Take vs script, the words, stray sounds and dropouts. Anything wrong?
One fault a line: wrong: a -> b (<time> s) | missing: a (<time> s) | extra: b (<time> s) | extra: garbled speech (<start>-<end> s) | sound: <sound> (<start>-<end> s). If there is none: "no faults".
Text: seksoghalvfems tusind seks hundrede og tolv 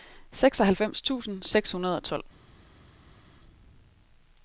no faults